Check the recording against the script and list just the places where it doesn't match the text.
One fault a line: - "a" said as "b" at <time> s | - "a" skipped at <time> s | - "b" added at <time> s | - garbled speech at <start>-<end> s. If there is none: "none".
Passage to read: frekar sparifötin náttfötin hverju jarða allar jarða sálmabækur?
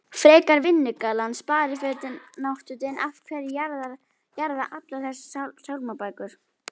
- "vinnugallann" added at 0.6 s
- "af" added at 3.1 s
- "jarða" said as "þessar" at 5.1 s